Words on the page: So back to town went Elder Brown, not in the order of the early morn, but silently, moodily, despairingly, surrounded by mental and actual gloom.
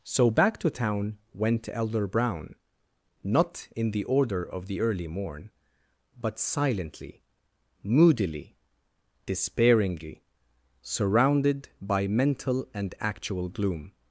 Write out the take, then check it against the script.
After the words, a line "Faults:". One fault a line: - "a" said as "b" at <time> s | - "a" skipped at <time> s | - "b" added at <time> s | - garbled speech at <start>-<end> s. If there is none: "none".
So back to town went Elder Brown, not in the order of the early morn, but silently, moodily, despairingly, surrounded by mental and actual gloom.
Faults:
none